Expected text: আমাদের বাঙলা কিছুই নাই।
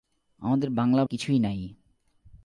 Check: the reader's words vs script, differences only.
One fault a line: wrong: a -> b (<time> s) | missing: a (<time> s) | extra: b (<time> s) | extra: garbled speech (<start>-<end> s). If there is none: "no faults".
no faults